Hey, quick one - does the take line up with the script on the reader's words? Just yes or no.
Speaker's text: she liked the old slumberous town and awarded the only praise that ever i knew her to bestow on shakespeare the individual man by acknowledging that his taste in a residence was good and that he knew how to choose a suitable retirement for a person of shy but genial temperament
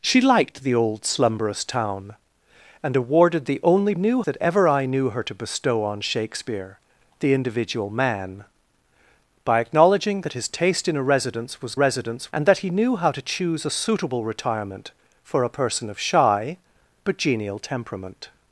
no